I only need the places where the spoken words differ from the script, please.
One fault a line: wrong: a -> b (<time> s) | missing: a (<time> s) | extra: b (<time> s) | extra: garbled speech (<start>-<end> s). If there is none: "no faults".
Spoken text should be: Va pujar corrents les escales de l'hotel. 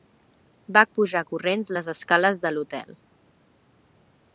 no faults